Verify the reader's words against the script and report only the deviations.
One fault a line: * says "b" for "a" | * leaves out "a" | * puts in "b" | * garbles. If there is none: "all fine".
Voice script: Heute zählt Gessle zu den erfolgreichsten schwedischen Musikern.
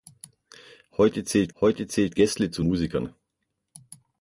* puts in "heute zählt"
* leaves out "den erfolgreichsten schwedischen"